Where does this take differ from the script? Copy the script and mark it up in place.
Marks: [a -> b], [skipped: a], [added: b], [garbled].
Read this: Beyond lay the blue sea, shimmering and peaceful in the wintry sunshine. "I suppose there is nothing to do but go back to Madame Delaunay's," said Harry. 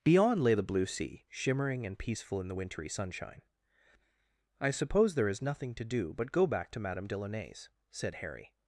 Beyond lay the blue sea, shimmering and peaceful in the wintry sunshine. "I suppose there is nothing to do but go back to Madame Delaunay's," said Harry.